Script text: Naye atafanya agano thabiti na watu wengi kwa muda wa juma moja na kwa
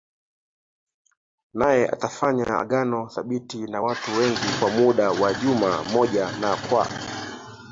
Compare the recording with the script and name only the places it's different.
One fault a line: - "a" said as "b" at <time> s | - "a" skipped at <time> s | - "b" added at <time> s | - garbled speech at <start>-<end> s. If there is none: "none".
none